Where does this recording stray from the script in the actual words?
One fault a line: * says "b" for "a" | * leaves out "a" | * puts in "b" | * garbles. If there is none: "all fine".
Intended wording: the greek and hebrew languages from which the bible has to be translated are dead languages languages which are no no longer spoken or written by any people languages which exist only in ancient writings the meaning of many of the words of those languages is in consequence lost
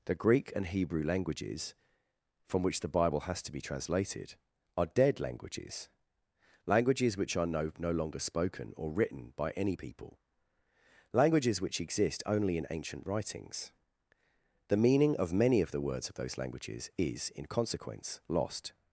all fine